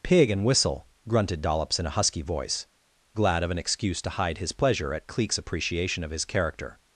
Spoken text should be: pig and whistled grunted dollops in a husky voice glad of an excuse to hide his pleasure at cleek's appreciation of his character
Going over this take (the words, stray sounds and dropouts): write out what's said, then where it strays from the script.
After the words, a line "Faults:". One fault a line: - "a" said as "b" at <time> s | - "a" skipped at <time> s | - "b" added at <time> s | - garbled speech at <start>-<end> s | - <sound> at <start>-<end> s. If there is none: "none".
pig and whistle grunted dollops in a husky voice glad of an excuse to hide his pleasure at cleek's appreciation of his character
Faults:
- "whistled" said as "whistle" at 0.4 s